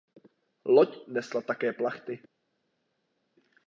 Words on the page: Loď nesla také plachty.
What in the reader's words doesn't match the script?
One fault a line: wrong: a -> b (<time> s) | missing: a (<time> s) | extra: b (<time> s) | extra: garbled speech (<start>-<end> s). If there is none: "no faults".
no faults